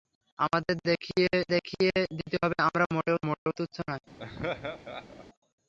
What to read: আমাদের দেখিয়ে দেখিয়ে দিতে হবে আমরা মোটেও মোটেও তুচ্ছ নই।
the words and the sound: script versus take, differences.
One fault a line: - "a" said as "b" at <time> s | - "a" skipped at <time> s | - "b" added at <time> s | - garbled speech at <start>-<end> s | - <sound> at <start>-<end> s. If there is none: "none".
- dropout at 3.4-3.5 s
- laugh at 4.2-5.3 s